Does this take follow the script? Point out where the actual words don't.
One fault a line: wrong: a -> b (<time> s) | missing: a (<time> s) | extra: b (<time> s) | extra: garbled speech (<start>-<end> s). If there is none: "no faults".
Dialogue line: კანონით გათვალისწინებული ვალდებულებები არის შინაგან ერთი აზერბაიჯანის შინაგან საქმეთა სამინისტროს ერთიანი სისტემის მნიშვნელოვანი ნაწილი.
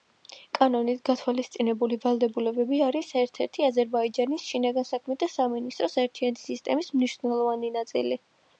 wrong: შინაგან -> ერთ (3.2 s)